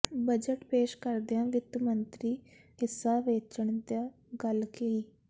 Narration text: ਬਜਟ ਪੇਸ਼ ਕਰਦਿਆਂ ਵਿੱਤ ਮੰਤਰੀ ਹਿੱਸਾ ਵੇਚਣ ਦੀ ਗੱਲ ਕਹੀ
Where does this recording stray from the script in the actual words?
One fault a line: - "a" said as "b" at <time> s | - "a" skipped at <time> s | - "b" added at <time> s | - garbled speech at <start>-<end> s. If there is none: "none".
none